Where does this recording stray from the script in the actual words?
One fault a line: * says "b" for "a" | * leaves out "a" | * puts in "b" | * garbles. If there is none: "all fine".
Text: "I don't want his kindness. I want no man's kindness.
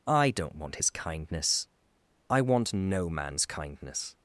all fine